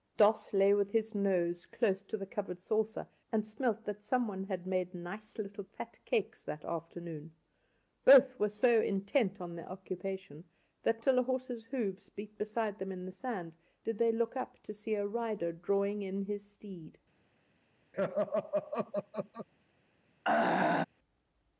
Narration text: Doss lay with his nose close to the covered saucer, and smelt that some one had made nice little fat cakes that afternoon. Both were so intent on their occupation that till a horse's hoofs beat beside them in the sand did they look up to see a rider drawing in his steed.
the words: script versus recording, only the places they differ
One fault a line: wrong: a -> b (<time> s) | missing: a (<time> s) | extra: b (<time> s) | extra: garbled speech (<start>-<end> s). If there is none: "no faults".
no faults